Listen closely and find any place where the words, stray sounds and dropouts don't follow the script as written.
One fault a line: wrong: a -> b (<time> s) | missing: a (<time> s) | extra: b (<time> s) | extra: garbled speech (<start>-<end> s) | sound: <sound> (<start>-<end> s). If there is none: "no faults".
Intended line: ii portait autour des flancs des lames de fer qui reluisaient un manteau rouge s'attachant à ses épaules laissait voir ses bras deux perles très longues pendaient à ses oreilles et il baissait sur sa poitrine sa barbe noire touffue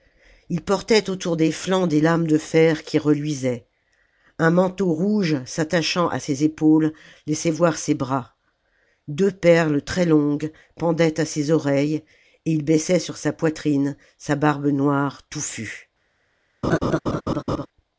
sound: laugh (16.6-17.7 s)